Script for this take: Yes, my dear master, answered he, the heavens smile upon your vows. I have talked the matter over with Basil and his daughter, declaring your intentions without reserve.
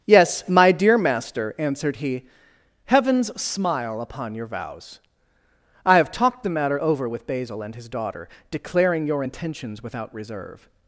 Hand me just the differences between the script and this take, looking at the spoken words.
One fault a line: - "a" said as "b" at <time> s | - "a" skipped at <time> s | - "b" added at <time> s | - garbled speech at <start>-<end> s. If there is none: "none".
- "the" skipped at 2.2 s